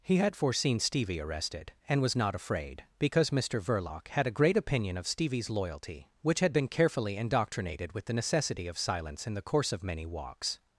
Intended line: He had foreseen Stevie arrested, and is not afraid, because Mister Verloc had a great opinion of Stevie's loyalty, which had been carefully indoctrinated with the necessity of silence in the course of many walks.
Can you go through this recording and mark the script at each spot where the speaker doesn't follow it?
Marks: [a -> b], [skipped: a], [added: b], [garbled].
He had foreseen Stevie arrested, and [is -> was] not afraid, because Mister Verloc had a great opinion of Stevie's loyalty, which had been carefully indoctrinated with the necessity of silence in the course of many walks.